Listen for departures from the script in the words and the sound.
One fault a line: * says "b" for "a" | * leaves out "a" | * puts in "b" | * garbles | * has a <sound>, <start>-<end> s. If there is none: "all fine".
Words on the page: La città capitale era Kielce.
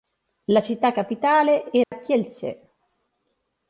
* has a dropout, 1.8-1.9 s